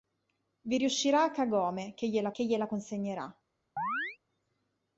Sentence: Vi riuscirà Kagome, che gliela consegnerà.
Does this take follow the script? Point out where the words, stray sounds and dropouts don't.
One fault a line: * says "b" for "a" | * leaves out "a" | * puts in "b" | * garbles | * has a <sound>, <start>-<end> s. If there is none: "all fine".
* puts in "che gliela"
* has a chirp, 3.8-4.2 s